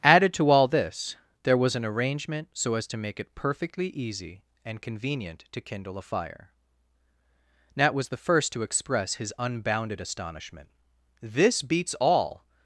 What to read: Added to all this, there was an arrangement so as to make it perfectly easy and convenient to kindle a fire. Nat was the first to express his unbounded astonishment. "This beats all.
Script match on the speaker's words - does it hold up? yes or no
yes